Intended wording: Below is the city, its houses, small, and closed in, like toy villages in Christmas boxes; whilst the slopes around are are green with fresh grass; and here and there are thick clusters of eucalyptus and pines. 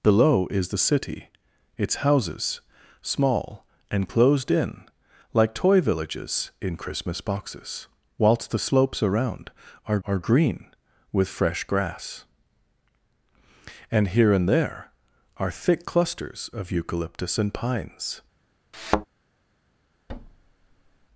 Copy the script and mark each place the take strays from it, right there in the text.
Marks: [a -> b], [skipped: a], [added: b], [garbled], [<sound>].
Below is the city, its houses, small, and closed in, like toy villages in Christmas boxes; whilst the slopes around are are green with fresh grass; and here and there are thick clusters of eucalyptus and pines. [thud] [thud]